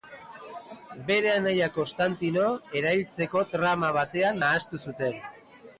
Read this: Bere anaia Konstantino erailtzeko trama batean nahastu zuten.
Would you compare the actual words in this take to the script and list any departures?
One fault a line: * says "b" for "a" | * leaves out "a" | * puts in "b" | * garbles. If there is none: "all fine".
all fine